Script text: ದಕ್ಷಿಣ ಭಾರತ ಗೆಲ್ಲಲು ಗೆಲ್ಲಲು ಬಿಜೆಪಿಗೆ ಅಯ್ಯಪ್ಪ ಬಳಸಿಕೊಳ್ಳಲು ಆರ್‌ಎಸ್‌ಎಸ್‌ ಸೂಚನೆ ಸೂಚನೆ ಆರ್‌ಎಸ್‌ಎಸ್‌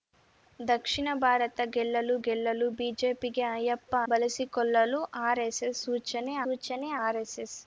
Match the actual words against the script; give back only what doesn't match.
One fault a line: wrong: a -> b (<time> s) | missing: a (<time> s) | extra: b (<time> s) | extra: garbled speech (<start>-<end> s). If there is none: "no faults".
no faults